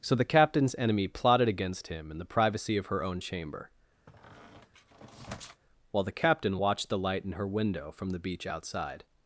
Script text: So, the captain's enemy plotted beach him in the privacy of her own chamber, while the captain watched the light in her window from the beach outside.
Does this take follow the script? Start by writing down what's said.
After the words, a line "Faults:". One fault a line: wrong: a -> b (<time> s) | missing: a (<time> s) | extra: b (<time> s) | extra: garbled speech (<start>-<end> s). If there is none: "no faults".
So, the captain's enemy plotted against him in the privacy of her own chamber, while the captain watched the light in her window from the beach outside.
Faults:
wrong: beach -> against (1.5 s)